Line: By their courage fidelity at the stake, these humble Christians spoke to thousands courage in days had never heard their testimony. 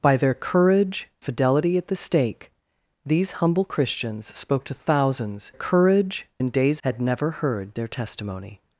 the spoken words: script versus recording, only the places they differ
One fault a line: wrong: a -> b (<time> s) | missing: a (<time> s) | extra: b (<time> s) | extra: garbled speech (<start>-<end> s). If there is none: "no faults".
no faults